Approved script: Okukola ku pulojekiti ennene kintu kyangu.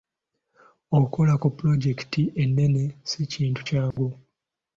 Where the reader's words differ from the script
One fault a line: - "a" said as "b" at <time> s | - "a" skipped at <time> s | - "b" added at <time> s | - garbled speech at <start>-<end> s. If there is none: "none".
- "si" added at 3.1 s